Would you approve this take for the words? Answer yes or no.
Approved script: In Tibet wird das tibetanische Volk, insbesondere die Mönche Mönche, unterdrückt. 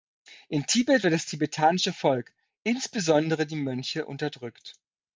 no